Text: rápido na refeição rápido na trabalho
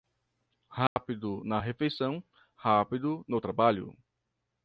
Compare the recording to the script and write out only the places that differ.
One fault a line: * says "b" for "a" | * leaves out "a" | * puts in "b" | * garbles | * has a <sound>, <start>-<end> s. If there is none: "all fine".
* has a dropout, 0.9-1.0 s
* says "no" for "na"